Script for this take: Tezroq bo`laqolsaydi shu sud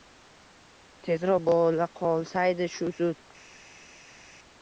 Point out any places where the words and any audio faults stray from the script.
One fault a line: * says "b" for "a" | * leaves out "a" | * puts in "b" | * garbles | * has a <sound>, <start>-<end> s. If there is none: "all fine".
all fine